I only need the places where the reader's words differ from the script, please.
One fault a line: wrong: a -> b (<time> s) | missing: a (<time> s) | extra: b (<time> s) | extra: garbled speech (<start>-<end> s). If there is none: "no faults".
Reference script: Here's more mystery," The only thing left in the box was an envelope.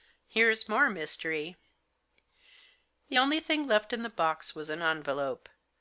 no faults